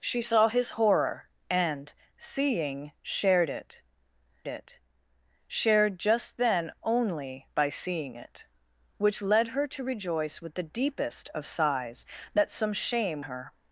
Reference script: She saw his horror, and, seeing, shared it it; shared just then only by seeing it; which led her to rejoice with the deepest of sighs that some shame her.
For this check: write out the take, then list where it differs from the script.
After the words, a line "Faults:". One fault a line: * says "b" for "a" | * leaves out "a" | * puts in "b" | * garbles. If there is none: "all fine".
She saw his horror, and, seeing, shared it it; shared just then only by seeing it; which led her to rejoice with the deepest of sighs that some shame her.
Faults:
all fine